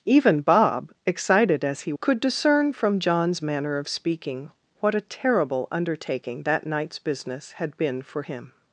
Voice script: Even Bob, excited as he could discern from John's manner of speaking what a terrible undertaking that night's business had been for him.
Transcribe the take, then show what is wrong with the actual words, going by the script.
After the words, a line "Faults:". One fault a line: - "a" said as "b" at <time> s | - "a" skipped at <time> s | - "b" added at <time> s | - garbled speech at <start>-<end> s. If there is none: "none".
Even Bob, excited as he could discern from John's manner of speaking what a terrible undertaking that night's business had been for him.
Faults:
none